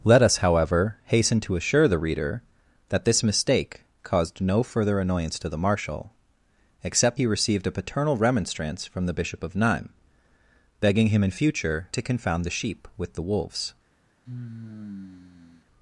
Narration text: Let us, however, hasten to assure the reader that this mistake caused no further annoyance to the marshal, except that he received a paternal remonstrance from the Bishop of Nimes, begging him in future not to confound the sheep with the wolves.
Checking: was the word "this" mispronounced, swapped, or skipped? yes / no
no